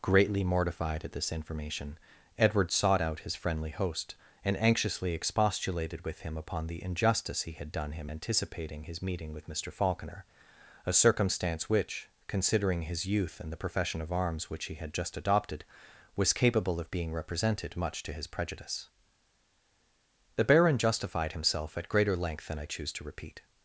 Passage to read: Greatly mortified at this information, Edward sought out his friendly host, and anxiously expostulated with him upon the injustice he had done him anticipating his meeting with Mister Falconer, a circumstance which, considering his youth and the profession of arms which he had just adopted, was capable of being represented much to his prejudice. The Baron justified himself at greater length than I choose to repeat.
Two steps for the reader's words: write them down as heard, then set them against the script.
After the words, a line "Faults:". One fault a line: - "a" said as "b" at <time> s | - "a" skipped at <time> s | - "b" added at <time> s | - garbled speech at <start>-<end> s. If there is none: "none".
Greatly mortified at this information, Edward sought out his friendly host, and anxiously expostulated with him upon the injustice he had done him anticipating his meeting with Mister Falconer, a circumstance which, considering his youth and the profession of arms which he had just adopted, was capable of being represented much to his prejudice. The Baron justified himself at greater length than I choose to repeat.
Faults:
none